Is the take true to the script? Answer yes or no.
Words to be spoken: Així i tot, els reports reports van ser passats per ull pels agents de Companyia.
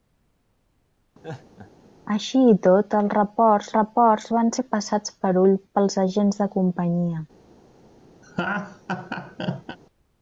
yes